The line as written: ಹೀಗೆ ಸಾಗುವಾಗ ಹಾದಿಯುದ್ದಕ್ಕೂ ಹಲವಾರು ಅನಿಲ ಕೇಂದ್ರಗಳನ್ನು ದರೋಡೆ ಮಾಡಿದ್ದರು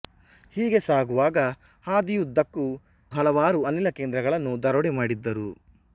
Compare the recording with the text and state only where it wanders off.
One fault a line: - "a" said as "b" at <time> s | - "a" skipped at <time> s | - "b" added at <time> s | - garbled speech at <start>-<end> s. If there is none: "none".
none